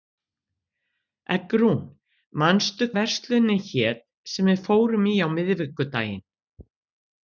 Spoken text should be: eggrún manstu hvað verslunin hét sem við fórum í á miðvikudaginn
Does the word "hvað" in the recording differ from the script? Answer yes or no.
yes